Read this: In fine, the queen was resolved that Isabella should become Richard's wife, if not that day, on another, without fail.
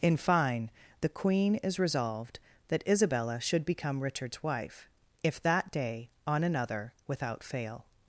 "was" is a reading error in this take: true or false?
true